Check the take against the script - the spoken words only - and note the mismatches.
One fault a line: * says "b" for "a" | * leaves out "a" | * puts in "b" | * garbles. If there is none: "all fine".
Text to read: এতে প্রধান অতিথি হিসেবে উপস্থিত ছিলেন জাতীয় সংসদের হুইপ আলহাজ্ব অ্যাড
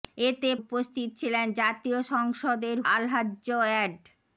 * leaves out "প্রধান অতিথি হিসেবে"
* leaves out "হুইপ"